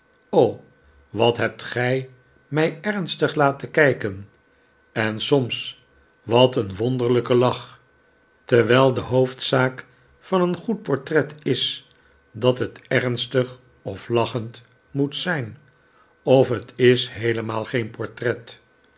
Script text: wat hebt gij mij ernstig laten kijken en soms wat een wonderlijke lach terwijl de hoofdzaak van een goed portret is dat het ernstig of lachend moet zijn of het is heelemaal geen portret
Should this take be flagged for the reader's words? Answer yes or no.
no